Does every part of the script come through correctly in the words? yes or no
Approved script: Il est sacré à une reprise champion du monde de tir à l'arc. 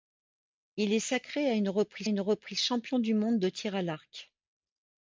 no